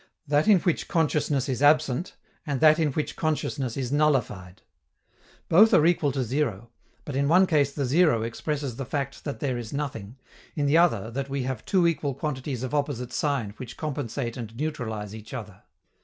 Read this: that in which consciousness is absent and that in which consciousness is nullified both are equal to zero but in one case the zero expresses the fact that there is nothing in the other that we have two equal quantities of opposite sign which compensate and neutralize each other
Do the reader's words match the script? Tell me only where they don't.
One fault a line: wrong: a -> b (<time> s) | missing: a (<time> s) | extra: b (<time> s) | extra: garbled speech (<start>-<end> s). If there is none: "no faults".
no faults